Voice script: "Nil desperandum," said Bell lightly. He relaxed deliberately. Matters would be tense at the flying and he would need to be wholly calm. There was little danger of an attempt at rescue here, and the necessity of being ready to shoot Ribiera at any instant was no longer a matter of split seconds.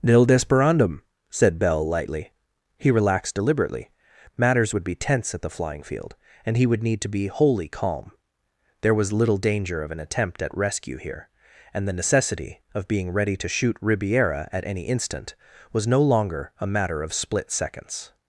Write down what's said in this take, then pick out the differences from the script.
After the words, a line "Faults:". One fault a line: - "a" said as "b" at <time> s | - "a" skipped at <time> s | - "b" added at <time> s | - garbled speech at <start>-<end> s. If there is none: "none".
"Nil desperandum," said Bell lightly. He relaxed deliberately. Matters would be tense at the flying field, and he would need to be wholly calm. There was little danger of an attempt at rescue here, and the necessity of being ready to shoot Ribiera at any instant was no longer a matter of split seconds.
Faults:
- "field" added at 5.8 s